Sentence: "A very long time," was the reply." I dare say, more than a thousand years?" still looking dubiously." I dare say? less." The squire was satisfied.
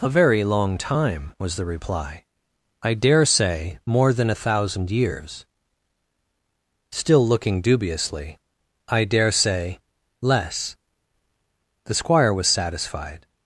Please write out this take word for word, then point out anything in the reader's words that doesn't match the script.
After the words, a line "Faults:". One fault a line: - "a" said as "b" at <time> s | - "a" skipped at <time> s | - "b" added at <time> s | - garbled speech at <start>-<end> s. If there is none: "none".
"A very long time," was the reply." I dare say, more than a thousand years?" still looking dubiously." I dare say? less." The squire was satisfied.
Faults:
none